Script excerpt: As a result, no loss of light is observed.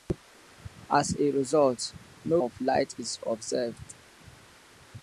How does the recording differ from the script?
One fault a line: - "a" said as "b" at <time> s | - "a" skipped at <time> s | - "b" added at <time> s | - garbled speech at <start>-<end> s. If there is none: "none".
- "loss" skipped at 2.4 s